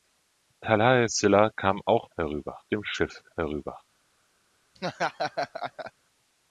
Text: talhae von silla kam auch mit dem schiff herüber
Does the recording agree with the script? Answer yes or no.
no